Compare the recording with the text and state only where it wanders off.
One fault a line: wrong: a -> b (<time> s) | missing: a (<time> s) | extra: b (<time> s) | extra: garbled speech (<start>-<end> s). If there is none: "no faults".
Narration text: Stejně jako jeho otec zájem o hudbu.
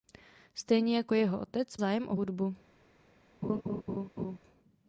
no faults